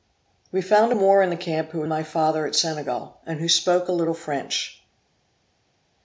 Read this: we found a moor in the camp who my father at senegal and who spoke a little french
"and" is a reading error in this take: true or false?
false